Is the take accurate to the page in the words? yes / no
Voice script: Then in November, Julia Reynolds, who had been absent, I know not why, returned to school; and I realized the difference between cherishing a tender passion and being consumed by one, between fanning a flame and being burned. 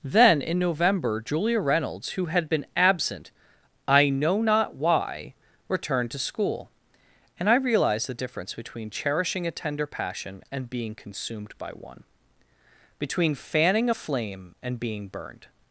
yes